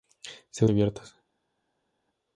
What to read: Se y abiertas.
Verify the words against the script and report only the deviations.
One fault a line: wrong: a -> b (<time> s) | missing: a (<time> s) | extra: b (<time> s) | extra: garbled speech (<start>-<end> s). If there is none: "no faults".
no faults